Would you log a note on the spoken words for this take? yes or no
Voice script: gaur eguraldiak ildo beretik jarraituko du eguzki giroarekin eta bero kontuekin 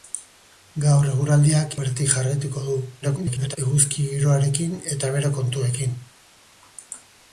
yes